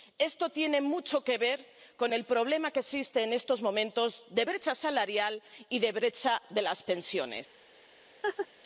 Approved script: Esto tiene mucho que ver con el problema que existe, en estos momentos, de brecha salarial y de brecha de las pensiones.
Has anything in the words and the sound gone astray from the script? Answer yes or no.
yes